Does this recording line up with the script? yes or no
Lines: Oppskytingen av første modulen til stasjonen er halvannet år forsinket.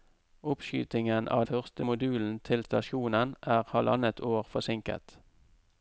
yes